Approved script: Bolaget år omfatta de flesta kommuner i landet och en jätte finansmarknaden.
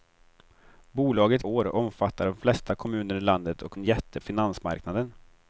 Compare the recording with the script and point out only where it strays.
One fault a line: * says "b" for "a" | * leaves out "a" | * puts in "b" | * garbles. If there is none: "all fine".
all fine